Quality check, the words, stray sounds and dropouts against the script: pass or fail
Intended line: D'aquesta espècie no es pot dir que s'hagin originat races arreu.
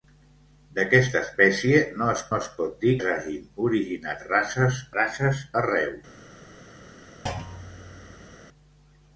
fail